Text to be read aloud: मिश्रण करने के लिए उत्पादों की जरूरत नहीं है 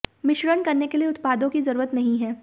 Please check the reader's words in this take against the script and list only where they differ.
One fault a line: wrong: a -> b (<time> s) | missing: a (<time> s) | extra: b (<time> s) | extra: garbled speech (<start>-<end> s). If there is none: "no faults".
no faults